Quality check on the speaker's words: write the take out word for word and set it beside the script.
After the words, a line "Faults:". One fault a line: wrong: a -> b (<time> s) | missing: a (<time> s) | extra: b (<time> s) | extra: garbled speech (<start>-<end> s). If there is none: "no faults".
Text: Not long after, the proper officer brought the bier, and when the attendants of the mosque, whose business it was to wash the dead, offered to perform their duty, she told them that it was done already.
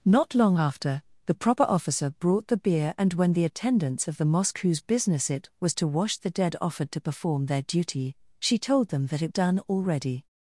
Not long after, the proper officer brought the bier, and when the attendants of the mosque, whose business it was to wash the dead, offered to perform their duty, she told them that it done already.
Faults:
missing: was (9.3 s)